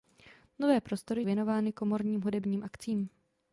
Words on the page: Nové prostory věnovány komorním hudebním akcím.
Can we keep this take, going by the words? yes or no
yes